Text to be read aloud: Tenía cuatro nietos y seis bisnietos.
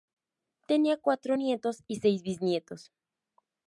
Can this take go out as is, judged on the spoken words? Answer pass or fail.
pass